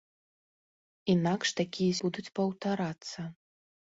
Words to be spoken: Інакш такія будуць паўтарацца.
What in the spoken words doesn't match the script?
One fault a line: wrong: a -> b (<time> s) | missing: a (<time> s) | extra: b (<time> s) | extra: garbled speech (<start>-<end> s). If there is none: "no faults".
no faults